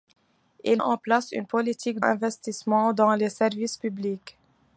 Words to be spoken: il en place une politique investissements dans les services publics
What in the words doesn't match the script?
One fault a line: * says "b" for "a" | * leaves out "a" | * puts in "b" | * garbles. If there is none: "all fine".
all fine